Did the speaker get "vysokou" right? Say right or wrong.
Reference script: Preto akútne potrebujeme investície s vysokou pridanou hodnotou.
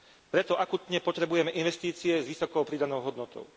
right